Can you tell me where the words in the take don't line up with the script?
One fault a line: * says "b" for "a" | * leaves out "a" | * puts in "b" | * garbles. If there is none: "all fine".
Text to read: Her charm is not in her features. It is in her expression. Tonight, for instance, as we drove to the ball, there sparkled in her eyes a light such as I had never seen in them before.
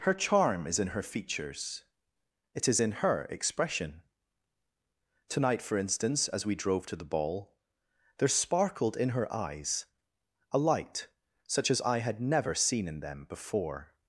* leaves out "not"